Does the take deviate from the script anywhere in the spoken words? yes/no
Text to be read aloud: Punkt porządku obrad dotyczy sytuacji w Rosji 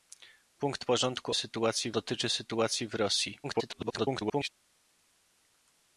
yes